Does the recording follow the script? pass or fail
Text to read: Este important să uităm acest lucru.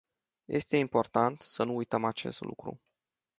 fail